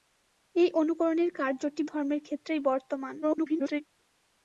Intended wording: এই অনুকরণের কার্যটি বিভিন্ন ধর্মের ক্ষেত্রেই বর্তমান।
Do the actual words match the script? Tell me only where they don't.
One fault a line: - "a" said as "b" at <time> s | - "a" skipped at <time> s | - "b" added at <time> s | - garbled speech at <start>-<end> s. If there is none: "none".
- "বিভিন্ন" skipped at 1.8 s
- garbled speech at 3.2-3.8 s